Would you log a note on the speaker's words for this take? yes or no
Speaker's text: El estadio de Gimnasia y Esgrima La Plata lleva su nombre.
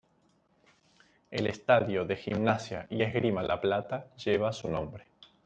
no